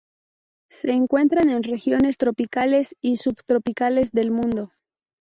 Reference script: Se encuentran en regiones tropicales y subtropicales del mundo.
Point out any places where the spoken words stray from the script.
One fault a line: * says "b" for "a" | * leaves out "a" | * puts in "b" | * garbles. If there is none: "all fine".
all fine